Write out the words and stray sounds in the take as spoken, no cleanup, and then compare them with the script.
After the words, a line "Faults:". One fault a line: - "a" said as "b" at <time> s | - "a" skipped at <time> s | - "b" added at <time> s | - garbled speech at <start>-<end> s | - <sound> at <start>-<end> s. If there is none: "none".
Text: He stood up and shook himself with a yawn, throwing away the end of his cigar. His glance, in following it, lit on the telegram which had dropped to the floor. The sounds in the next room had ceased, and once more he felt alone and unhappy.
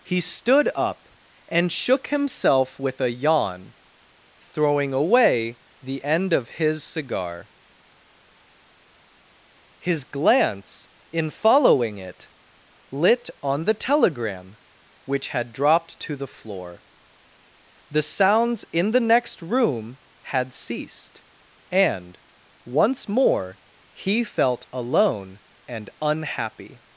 He stood up and shook himself with a yawn, throwing away the end of his cigar. His glance, in following it, lit on the telegram which had dropped to the floor. The sounds in the next room had ceased, and once more he felt alone and unhappy.
Faults:
none